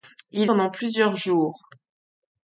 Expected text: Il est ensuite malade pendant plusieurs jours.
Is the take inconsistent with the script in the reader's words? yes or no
yes